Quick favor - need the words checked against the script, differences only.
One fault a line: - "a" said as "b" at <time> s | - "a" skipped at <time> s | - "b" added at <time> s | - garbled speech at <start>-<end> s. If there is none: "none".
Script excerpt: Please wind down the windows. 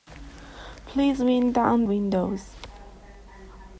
- "the" skipped at 1.9 s